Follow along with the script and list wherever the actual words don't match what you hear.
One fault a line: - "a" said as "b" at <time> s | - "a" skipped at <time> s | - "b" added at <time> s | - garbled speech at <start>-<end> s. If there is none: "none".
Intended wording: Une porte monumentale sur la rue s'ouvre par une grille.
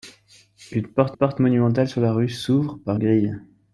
- "porte" added at 1.1 s
- "une" skipped at 3.0 s